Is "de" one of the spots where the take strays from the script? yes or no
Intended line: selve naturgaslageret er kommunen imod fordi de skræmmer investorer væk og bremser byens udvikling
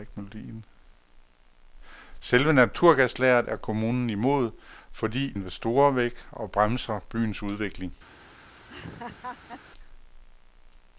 yes